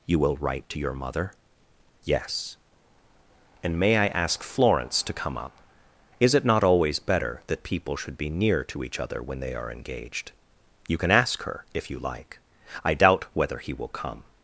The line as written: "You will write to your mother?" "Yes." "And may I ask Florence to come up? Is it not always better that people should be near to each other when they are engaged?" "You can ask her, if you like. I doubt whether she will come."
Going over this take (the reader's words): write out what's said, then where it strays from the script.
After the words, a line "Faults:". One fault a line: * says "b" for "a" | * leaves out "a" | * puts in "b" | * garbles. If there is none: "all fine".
"You will write to your mother?" "Yes." "And may I ask Florence to come up? Is it not always better that people should be near to each other when they are engaged?" "You can ask her, if you like. I doubt whether he will come."
Faults:
* says "he" for "she"